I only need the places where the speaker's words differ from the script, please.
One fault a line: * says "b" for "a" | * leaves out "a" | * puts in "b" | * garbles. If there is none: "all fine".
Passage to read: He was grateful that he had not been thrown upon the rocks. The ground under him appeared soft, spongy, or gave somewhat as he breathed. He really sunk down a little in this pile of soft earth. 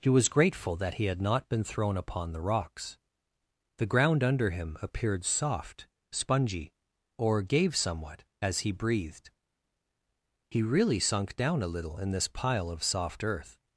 all fine